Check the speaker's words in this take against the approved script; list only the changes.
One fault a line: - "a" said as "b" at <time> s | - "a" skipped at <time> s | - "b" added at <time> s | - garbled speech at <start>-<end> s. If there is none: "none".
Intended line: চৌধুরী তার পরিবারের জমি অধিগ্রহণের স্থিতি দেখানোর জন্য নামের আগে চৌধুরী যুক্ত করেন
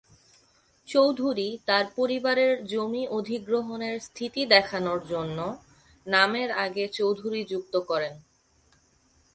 none